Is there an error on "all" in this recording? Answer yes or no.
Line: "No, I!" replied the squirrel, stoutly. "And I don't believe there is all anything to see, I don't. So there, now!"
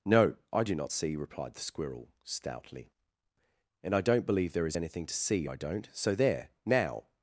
yes